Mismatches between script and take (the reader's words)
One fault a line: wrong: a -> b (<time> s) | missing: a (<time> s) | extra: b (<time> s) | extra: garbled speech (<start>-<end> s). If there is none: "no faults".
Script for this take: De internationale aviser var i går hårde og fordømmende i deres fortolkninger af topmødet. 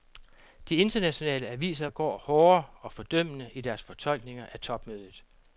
missing: var (1.9 s)